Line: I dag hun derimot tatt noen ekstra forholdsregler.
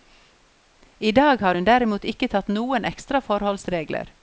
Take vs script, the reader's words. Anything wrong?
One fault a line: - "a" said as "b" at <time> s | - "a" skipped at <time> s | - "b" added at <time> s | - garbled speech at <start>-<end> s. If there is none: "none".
- "har" added at 1.4 s
- "ikke" added at 2.0 s